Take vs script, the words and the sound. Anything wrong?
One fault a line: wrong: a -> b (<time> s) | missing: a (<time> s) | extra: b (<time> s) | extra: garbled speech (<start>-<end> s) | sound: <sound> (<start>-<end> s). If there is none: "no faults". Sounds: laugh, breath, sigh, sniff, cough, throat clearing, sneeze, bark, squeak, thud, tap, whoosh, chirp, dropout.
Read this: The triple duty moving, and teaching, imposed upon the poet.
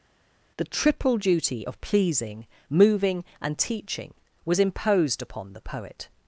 extra: of pleasing (1.6 s)
extra: was (4.5 s)